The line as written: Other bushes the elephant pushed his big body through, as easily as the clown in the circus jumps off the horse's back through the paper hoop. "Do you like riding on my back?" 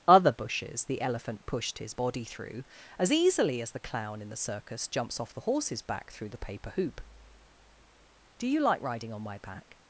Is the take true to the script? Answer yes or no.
no